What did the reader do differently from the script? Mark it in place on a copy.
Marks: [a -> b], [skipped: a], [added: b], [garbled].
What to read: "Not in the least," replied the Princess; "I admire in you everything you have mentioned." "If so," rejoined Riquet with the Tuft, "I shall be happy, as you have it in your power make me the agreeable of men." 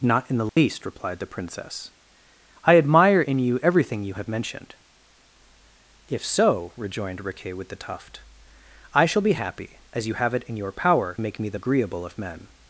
"Not in the least," replied the Princess; "I admire in you everything you have mentioned." "If so," rejoined Riquet with the Tuft, "I shall be happy, as you have it in your power make me the agreeable of men."